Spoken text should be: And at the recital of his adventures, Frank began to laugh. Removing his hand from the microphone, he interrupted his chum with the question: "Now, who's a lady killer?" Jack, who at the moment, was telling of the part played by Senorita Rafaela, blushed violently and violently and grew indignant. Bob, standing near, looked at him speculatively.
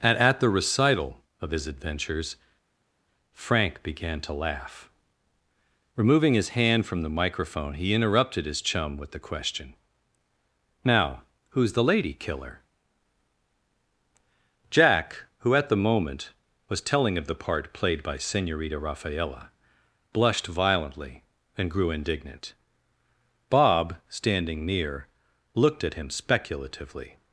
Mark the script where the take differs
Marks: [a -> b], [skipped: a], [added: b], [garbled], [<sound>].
And at the recital of his adventures, Frank began to laugh. Removing his hand from the microphone, he interrupted his chum with the question: "Now, who's [a -> the] lady killer?" Jack, who at the moment, was telling of the part played by Senorita Rafaela, blushed violently and [skipped: violently and] grew indignant. Bob, standing near, looked at him speculatively.